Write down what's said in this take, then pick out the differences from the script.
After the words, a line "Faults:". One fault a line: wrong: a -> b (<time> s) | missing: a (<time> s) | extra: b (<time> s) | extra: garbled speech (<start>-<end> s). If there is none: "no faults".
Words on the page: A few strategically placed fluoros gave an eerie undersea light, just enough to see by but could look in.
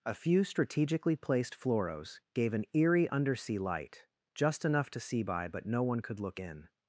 A few strategically placed fluoros gave an eerie undersea light, just enough to see by but no one could look in.
Faults:
extra: no one (5.7 s)